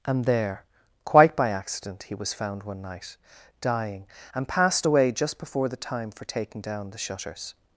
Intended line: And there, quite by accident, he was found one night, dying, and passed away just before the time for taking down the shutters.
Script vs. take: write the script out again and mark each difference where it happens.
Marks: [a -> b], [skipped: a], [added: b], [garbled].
And there, quite by accident, he was found one night, dying, and passed away just before the time for taking down the shutters.